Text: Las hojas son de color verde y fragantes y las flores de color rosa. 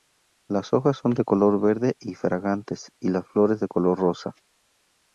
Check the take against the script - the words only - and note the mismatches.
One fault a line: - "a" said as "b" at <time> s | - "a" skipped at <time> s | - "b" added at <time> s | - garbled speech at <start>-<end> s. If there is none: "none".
none